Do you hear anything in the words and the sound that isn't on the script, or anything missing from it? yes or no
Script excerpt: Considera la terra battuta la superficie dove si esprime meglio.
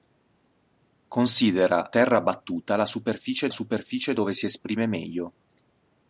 yes